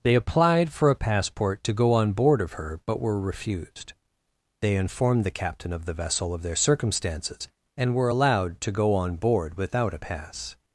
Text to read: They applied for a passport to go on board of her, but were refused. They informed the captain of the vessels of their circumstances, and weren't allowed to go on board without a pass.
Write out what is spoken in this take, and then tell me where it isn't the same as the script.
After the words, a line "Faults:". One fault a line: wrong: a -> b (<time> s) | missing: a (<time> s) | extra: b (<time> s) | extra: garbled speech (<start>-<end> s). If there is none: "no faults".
They applied for a passport to go on board of her, but were refused. They informed the captain of the vessel of their circumstances, and were allowed to go on board without a pass.
Faults:
wrong: vessels -> vessel (5.9 s)
wrong: weren't -> were (7.9 s)